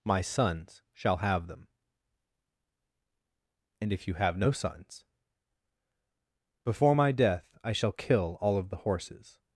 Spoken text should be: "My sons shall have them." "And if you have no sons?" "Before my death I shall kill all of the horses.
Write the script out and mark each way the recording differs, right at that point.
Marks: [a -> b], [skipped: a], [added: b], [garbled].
"My sons shall have them." "And if you have no sons?" "Before my death I shall kill all of the horses.